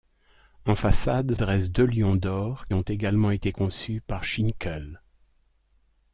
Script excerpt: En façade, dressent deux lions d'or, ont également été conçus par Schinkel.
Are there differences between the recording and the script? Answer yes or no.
no